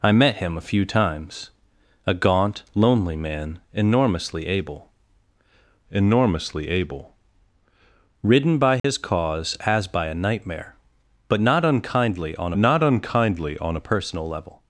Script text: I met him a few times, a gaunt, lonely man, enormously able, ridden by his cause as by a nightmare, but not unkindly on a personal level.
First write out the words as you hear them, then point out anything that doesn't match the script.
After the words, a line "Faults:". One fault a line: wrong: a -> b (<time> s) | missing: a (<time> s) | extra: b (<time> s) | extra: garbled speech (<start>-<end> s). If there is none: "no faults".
I met him a few times, a gaunt, lonely man, enormously able enormously able, ridden by his cause as by a nightmare, but not unkindly on not unkindly on a personal level.
Faults:
extra: enormously able (5.9 s)
extra: not unkindly on (12.6 s)